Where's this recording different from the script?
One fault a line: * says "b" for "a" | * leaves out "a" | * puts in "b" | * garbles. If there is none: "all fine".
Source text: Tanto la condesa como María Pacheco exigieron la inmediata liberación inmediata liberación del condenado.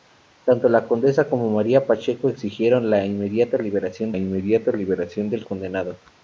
all fine